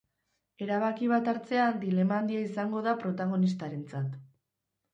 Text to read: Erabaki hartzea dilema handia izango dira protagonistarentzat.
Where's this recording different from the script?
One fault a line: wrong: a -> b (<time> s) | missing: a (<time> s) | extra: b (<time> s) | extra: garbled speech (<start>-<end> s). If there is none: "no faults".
extra: bat (1.1 s)
wrong: dira -> da (2.9 s)